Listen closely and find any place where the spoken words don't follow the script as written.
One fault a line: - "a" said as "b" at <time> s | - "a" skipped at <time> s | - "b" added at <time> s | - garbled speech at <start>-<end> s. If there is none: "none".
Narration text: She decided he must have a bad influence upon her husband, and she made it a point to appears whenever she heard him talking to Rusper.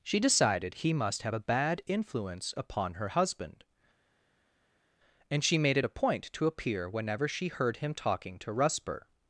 - "appears" said as "appear" at 6.5 s